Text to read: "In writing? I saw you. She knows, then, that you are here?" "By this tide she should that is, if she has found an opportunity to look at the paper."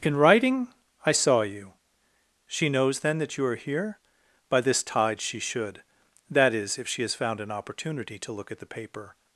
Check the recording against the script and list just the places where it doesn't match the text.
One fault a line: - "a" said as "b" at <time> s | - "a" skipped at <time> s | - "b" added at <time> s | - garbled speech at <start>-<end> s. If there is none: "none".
none